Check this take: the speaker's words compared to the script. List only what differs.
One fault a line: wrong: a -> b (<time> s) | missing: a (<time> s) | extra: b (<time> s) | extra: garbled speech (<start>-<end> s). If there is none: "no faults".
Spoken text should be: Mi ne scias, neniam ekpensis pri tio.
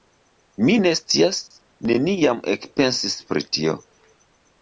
no faults